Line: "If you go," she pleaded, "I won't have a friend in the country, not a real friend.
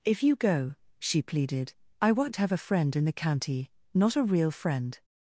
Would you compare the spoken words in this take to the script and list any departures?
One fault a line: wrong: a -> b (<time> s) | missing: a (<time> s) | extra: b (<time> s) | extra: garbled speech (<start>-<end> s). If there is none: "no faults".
wrong: country -> county (3.1 s)